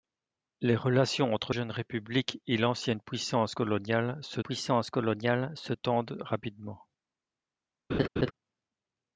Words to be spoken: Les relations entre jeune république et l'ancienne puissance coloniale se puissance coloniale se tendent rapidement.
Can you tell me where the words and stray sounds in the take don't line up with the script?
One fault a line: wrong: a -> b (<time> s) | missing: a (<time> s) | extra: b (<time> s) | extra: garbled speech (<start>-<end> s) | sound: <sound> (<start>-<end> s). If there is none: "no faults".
sound: laugh (7.9-8.3 s)